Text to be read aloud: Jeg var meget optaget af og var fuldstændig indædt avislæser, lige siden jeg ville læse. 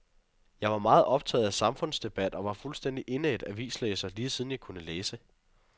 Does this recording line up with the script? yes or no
no